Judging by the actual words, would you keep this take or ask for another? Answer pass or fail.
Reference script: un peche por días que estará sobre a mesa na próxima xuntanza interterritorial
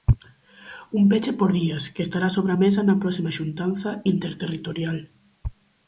pass